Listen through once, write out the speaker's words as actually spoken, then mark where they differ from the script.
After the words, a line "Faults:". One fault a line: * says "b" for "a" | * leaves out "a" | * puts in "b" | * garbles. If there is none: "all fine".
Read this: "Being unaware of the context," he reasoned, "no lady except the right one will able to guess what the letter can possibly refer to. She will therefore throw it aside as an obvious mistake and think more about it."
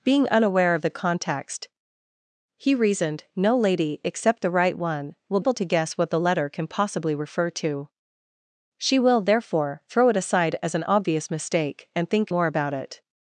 "Being unaware of the context," he reasoned, "no lady except the right one will able to guess what the letter can possibly refer to. She will therefore throw it aside as an obvious mistake and think more about it."
Faults:
all fine